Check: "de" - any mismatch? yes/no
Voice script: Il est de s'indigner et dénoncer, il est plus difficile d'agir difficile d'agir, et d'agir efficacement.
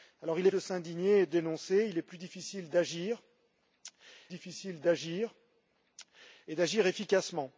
no